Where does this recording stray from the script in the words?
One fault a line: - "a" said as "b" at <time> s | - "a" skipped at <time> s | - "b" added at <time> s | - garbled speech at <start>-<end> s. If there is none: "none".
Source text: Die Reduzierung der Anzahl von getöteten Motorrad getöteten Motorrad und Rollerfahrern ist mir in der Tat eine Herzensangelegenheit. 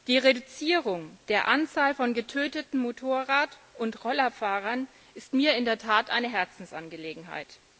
- "getöteten Motorrad" skipped at 3.6 s